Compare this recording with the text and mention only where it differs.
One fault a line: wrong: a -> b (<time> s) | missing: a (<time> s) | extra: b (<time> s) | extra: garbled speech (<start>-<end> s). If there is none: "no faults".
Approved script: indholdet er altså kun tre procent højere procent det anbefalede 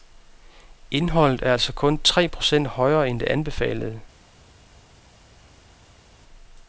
wrong: procent -> end (3.1 s)